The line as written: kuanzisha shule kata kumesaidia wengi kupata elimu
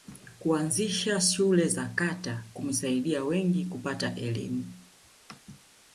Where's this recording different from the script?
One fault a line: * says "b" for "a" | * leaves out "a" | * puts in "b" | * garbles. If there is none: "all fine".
* puts in "za"